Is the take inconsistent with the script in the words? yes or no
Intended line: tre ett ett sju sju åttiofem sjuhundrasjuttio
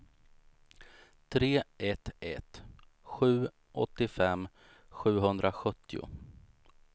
yes